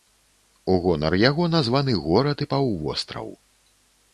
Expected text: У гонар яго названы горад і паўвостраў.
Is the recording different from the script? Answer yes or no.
no